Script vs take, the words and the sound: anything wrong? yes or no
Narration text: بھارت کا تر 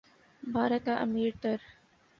yes